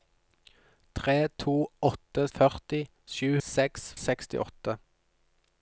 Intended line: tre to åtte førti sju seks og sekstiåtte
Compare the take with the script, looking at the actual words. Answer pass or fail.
pass